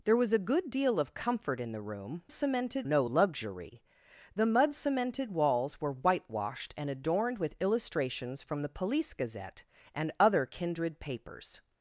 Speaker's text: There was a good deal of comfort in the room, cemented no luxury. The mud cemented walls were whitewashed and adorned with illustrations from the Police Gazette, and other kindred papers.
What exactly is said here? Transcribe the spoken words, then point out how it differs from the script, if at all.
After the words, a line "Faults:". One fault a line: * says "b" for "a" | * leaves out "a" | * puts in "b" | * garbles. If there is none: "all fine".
There was a good deal of comfort in the room, cemented no luxury. The mud cemented walls were whitewashed and adorned with illustrations from the Police Gazette, and other kindred papers.
Faults:
all fine